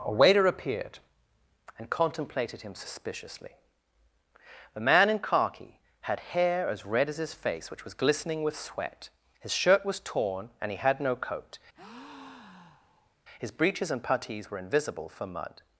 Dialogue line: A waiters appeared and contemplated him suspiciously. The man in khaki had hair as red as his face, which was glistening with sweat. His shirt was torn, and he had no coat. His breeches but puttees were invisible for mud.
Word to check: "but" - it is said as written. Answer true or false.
false